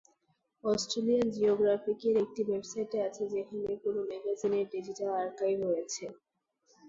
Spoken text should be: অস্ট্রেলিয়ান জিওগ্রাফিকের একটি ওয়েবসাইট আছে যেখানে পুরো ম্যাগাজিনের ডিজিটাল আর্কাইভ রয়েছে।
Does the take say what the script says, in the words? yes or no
yes